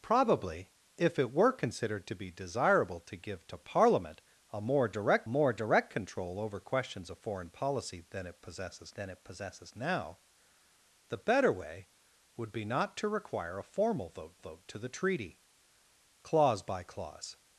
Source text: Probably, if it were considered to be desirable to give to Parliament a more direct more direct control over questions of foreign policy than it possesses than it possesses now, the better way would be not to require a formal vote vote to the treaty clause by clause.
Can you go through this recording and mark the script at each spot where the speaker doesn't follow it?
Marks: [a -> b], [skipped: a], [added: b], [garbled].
Probably, if it were considered to be desirable to give to Parliament a more direct more direct control over questions of foreign policy than it possesses than it possesses now, the better way would be not to require a formal vote vote to the treaty clause by clause.